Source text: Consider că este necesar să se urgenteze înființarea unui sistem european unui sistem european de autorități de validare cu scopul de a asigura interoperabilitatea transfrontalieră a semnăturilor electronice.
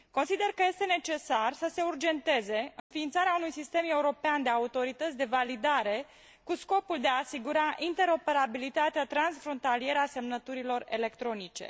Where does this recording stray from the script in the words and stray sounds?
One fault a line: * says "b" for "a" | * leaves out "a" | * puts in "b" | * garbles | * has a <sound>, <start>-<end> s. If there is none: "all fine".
* has a dropout, 2.8-2.9 s
* leaves out "unui sistem european"